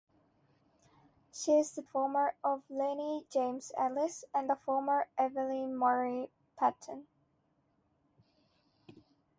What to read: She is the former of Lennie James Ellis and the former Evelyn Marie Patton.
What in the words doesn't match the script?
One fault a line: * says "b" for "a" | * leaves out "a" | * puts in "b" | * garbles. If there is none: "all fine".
all fine